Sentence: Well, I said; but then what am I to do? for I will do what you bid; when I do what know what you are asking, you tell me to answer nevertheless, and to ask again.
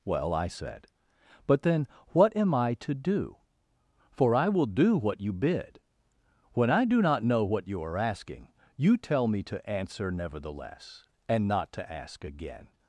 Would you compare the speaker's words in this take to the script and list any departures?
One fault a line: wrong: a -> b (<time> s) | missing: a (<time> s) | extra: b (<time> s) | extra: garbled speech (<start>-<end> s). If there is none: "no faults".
wrong: what -> not (7.0 s)
extra: not (11.5 s)